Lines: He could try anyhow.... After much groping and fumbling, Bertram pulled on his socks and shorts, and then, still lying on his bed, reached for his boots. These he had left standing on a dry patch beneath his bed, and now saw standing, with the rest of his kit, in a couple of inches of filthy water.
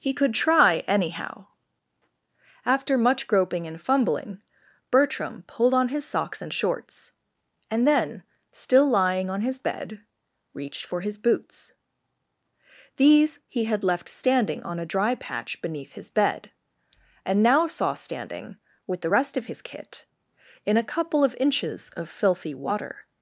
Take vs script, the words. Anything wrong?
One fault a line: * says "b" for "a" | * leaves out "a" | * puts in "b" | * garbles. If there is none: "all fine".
all fine